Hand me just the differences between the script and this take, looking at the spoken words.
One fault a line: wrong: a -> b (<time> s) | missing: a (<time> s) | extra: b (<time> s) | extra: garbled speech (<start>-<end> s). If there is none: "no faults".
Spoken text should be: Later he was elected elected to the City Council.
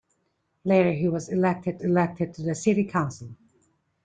no faults